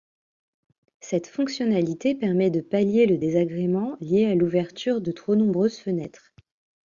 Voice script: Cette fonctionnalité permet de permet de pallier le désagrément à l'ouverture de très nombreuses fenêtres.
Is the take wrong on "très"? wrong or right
wrong